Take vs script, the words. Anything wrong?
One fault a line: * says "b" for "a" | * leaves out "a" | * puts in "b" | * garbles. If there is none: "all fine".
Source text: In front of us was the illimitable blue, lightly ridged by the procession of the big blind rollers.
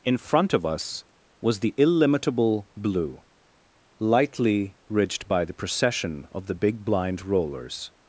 all fine